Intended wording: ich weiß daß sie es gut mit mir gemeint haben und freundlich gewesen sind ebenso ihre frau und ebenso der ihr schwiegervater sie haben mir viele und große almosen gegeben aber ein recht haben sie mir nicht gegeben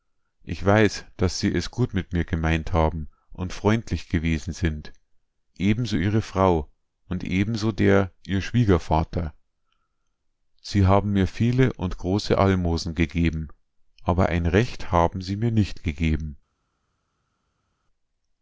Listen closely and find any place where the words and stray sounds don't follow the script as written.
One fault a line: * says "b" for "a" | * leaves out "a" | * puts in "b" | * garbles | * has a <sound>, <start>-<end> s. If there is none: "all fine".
all fine